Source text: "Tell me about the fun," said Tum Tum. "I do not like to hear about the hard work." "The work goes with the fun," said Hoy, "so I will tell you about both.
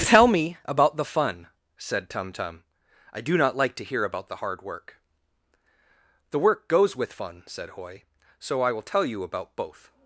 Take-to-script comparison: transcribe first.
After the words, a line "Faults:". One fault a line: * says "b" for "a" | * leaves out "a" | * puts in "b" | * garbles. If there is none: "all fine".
"Tell me about the fun," said Tum Tum. "I do not like to hear about the hard work." "The work goes with fun," said Hoy, "so I will tell you about both.
Faults:
* leaves out "the"